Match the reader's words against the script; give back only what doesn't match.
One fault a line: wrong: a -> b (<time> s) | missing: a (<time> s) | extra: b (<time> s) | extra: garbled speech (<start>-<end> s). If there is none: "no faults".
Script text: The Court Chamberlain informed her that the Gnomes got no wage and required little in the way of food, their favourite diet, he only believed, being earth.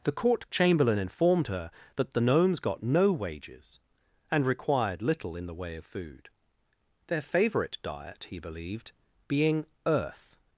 wrong: wage -> wages (3.1 s)
missing: only (8.4 s)